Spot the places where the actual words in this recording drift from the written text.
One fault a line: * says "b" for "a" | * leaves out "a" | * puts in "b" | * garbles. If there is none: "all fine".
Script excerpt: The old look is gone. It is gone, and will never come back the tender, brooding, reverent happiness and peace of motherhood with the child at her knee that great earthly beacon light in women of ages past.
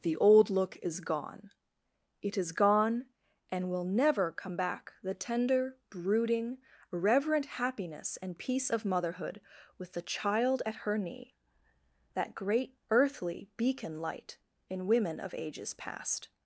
all fine